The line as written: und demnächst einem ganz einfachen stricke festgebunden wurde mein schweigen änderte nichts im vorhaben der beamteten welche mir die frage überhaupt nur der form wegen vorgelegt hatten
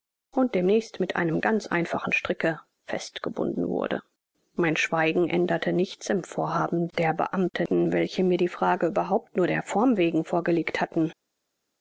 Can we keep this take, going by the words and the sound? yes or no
no